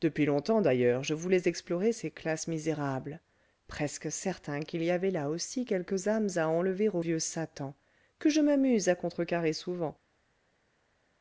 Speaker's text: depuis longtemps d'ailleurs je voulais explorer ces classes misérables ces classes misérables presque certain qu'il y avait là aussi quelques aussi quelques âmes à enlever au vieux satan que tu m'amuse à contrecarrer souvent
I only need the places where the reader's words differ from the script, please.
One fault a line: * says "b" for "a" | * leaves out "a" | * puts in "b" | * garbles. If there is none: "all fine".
* leaves out "ces classes misérables"
* leaves out "aussi quelques"
* says "je" for "tu"